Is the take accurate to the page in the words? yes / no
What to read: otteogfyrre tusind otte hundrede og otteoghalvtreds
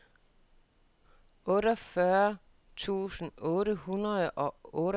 yes